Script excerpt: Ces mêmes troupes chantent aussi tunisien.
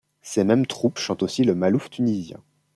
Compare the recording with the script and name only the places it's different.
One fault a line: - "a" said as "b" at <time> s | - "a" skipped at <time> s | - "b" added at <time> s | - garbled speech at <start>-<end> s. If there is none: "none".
- "le malouf" added at 1.4 s